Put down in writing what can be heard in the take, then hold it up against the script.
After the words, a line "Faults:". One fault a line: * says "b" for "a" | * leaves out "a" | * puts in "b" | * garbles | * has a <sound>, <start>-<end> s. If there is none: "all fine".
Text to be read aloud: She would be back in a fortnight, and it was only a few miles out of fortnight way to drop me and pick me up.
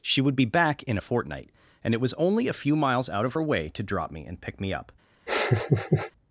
She would be back in a fortnight, and it was only a few miles out of her way to drop me and pick me up.
Faults:
* says "her" for "fortnight"
* has a laugh, 5.3-6.1 s